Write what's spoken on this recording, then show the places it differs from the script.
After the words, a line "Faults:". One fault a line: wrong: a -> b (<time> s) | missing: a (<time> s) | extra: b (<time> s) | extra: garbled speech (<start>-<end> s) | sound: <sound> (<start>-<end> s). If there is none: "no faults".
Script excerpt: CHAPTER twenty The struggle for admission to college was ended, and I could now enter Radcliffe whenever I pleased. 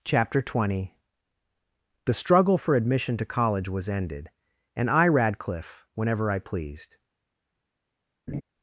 CHAPTER twenty The struggle for admission to college was ended, and I Radcliffe whenever I pleased.
Faults:
missing: could now enter (5.1 s)
sound: laugh (8.3-8.4 s)